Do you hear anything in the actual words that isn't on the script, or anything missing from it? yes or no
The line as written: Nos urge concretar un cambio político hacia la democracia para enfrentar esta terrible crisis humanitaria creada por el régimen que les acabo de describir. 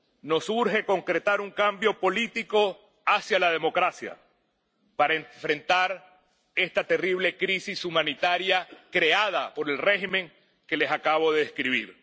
no